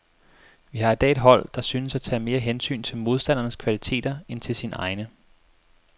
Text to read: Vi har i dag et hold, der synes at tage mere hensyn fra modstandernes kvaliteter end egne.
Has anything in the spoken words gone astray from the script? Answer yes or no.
yes